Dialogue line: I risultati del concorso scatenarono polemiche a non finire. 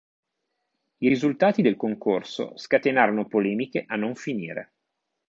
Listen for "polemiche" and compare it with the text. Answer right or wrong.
right